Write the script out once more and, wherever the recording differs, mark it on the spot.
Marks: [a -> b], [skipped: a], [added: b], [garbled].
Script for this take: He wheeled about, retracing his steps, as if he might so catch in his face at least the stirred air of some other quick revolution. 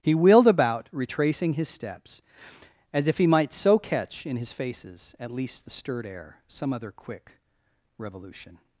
He wheeled about, retracing his steps, as if he might so catch in his [face -> faces] at least the stirred air [skipped: of] some other quick revolution.